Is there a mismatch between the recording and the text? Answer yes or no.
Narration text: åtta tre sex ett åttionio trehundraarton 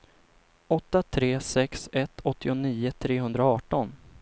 no